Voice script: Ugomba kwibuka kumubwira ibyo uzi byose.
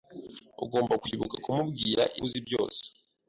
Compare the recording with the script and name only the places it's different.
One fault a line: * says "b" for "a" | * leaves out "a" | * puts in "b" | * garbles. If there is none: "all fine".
* leaves out "ibyo"